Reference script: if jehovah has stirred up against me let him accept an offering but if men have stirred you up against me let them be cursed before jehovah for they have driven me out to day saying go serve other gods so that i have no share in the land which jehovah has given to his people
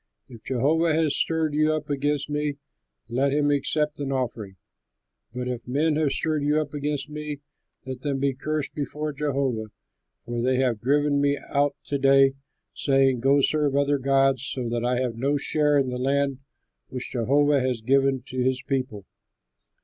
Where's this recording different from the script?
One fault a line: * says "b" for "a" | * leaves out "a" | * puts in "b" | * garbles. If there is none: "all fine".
* puts in "you"